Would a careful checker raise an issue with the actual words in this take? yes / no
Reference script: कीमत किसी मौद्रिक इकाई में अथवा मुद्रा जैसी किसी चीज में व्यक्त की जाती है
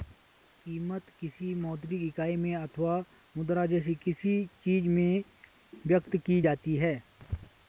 no